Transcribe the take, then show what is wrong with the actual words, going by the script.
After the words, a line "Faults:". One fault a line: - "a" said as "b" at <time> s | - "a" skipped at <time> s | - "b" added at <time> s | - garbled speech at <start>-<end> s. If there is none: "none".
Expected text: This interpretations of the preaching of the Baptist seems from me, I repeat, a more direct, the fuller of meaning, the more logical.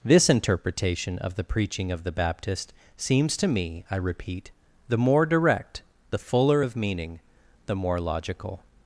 This interpretation of the preaching of the Baptist seems to me, I repeat, the more direct, the fuller of meaning, the more logical.
Faults:
- "interpretations" said as "interpretation" at 0.3 s
- "from" said as "to" at 3.4 s
- "a" said as "the" at 4.9 s